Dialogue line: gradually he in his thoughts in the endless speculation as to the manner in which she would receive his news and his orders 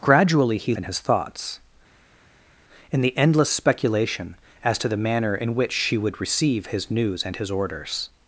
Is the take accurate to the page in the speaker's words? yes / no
yes